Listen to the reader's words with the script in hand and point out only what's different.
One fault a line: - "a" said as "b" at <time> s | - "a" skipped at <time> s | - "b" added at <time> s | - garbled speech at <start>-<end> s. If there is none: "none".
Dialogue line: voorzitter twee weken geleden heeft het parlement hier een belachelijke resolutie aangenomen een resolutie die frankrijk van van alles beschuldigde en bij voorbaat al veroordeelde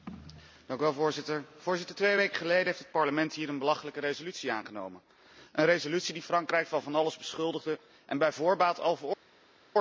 none